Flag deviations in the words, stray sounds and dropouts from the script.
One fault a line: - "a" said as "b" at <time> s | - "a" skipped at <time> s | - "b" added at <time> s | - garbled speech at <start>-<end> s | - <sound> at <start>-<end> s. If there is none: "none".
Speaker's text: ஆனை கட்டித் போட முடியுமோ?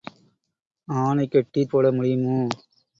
none